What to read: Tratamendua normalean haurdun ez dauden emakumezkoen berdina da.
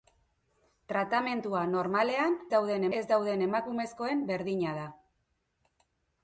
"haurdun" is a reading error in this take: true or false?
true